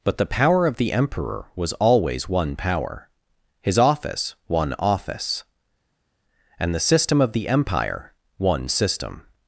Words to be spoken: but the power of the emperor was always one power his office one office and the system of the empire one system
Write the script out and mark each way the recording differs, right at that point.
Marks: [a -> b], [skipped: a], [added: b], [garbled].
but the power of the emperor was always one power his office one office and the system of the empire one system